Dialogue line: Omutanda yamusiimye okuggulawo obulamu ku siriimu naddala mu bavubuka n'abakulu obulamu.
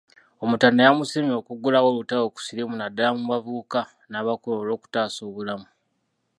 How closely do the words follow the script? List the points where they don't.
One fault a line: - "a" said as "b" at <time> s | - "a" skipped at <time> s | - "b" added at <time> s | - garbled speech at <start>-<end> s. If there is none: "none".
- "obulamu" said as "olutalo" at 1.9 s
- "olwokutaasa" added at 4.6 s